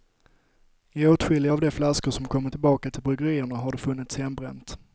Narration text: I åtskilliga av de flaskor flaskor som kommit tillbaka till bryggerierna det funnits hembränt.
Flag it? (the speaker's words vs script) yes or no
yes